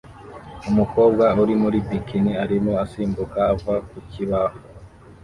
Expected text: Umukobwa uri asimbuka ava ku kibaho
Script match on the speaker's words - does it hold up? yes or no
no